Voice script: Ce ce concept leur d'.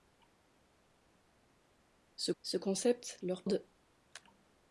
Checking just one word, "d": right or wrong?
right